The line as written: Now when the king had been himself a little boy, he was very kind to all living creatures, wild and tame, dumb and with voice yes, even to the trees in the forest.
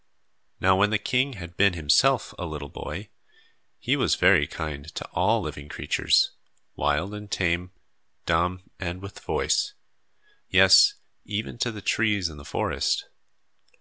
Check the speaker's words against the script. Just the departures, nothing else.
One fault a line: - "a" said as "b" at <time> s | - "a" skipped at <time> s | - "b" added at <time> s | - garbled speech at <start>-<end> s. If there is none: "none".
none